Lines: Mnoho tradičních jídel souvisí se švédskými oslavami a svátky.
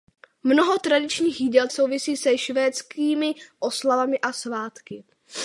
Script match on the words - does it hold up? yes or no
yes